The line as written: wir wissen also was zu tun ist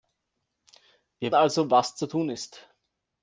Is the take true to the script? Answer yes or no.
no